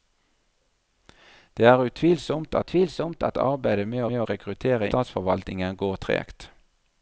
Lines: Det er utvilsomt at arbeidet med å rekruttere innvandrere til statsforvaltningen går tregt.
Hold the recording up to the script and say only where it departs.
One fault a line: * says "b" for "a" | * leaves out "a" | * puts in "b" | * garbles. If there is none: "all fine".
* puts in "utvilsomt"
* puts in "med"
* leaves out "innvandrere til"